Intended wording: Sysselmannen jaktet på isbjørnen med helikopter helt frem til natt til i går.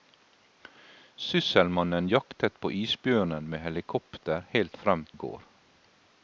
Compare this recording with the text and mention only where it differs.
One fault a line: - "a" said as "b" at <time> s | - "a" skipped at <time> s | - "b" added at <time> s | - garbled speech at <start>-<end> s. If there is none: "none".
- "til natt til" skipped at 5.0 s